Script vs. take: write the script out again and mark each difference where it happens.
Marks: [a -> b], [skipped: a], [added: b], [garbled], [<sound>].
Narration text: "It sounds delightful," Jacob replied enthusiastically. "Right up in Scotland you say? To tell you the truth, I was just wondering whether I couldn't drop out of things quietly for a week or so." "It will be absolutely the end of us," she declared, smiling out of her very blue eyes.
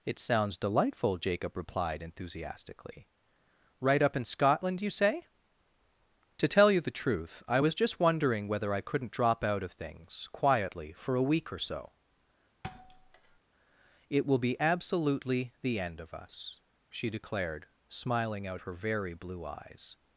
"It sounds delightful," Jacob replied enthusiastically. "Right up in Scotland you say? To tell you the truth, I was just wondering whether I couldn't drop out of things quietly for a week or so." [thud] "It will be absolutely the end of us," she declared, smiling out [skipped: of] her very blue eyes.